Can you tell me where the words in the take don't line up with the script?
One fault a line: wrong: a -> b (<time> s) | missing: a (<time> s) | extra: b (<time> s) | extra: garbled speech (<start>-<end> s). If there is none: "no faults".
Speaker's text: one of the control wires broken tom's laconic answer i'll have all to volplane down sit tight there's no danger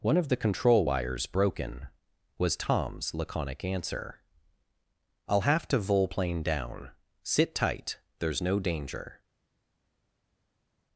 extra: was (2.4 s)
missing: all (5.7 s)